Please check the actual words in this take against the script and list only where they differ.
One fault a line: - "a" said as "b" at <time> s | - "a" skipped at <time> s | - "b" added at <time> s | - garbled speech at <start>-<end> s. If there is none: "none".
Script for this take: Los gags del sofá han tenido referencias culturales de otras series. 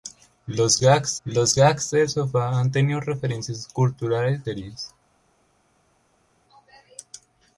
- "los gags" added at 1.3 s
- "de otras" skipped at 4.4 s